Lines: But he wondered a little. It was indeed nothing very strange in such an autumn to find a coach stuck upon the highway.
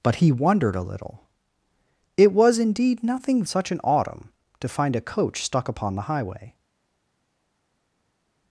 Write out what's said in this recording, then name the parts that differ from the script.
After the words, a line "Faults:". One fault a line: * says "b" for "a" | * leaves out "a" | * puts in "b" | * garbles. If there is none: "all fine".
But he wondered a little. It was indeed nothing such an autumn to find a coach stuck upon the highway.
Faults:
* leaves out "very strange in"